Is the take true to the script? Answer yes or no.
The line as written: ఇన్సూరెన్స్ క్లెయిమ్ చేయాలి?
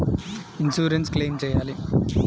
yes